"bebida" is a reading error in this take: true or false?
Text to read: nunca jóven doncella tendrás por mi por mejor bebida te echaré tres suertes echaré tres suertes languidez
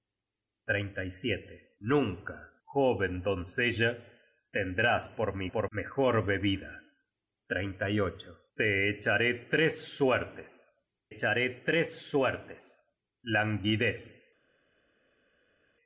false